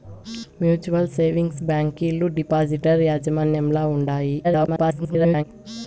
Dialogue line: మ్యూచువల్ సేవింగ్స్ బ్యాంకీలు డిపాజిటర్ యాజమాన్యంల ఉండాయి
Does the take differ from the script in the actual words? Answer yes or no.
yes